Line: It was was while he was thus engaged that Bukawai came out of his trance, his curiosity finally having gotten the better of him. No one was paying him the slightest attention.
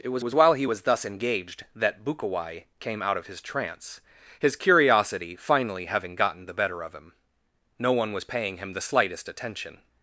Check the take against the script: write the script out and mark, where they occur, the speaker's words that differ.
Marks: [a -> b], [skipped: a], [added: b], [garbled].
It was was while he was thus engaged that Bukawai came out of his trance, his curiosity finally having gotten the better of him. No one was paying him the slightest attention.